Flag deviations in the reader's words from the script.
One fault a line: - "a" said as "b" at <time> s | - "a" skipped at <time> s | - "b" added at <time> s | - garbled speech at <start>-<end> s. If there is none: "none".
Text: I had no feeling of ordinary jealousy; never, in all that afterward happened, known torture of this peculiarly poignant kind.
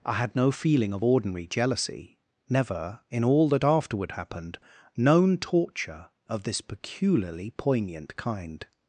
none